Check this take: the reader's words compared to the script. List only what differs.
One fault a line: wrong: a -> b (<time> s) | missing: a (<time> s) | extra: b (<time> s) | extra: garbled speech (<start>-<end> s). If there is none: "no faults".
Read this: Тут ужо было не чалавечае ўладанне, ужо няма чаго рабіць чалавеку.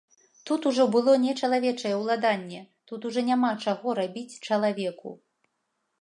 extra: тут (2.9 s)